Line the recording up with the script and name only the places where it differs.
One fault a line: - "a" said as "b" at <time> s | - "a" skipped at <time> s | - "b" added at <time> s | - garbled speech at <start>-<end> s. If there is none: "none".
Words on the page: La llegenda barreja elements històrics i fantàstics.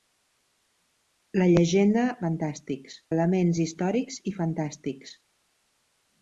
- "barreja" said as "fantàstics" at 2.2 s